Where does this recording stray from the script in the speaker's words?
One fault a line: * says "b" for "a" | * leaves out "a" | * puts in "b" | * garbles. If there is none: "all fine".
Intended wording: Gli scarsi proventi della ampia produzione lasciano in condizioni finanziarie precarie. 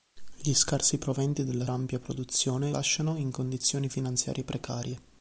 all fine